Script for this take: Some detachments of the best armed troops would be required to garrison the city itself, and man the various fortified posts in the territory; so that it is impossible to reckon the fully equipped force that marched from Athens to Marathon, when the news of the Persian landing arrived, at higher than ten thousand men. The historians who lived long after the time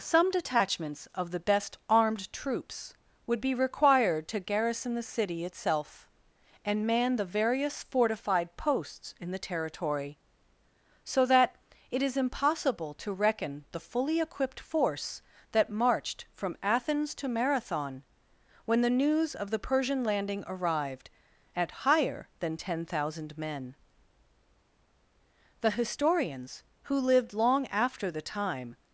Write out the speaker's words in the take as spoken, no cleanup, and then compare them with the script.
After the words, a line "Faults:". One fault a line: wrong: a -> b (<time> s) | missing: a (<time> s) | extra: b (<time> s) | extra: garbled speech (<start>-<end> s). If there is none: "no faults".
Some detachments of the best armed troops would be required to garrison the city itself, and man the various fortified posts in the territory; so that it is impossible to reckon the fully equipped force that marched from Athens to Marathon, when the news of the Persian landing arrived, at higher than ten thousand men. The historians who lived long after the time
Faults:
no faults